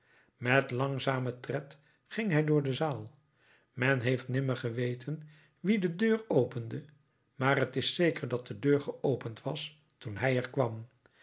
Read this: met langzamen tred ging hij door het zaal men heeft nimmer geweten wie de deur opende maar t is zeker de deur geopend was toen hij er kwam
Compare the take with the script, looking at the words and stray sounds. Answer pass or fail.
fail